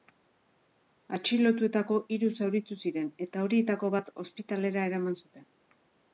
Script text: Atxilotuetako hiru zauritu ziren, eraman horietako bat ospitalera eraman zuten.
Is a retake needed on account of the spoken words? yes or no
yes